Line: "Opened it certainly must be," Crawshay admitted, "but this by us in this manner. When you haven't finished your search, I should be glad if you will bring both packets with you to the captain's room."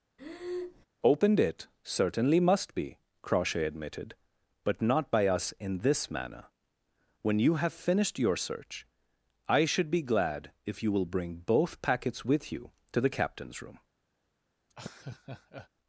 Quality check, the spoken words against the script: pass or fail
fail